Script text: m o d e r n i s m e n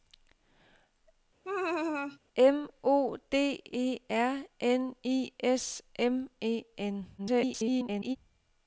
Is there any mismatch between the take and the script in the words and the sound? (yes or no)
yes